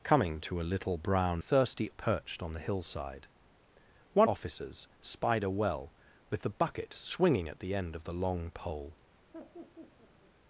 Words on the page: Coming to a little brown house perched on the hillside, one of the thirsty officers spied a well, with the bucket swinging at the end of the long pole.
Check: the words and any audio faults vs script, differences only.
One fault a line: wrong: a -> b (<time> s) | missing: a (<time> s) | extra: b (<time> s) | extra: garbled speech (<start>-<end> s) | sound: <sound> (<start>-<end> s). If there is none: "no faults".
wrong: house -> thirsty (1.4 s)
missing: of the thirsty (4.3 s)
sound: laugh (9.3-10.3 s)